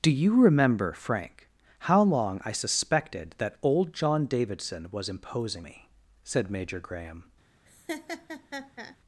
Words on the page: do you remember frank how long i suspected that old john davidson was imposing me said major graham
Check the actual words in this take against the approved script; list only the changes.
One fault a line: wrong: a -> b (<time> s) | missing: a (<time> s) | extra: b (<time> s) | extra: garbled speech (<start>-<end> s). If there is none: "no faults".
no faults